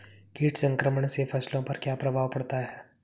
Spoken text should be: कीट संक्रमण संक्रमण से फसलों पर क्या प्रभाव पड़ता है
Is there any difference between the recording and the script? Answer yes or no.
yes